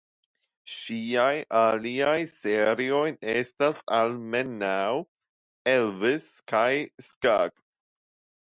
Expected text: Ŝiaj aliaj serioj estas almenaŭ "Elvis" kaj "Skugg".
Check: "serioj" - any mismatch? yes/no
no